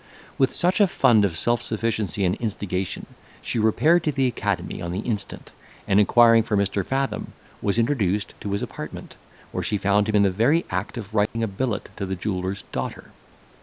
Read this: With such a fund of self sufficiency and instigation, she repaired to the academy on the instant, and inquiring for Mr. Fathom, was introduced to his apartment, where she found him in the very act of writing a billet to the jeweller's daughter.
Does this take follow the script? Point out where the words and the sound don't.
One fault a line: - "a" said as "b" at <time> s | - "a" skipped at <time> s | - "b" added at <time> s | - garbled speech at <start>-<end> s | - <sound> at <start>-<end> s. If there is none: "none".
- dropout at 11.3-11.4 s